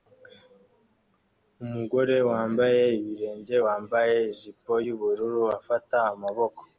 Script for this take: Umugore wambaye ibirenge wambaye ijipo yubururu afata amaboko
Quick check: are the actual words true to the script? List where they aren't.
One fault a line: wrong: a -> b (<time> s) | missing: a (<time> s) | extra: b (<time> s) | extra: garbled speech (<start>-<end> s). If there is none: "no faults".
no faults